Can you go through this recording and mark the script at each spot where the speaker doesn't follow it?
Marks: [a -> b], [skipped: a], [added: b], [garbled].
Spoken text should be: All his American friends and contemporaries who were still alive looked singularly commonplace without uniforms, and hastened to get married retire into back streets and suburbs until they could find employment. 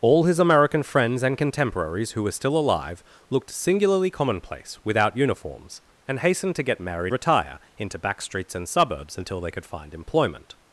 All his American friends and contemporaries who were still alive looked singularly commonplace without uniforms, and hastened to get married retire into back streets and suburbs until they could find employment.